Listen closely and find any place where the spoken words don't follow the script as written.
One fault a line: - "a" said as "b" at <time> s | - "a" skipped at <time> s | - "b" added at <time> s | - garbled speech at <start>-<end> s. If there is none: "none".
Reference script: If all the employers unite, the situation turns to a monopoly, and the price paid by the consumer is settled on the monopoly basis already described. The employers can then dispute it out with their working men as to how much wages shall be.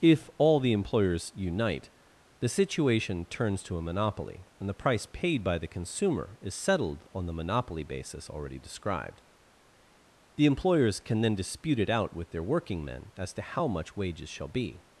none